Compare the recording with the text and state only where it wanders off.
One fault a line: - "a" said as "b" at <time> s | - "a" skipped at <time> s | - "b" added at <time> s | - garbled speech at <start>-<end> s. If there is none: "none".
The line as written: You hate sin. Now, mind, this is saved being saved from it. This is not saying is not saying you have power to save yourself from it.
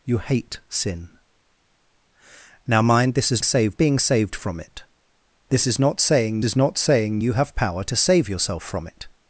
none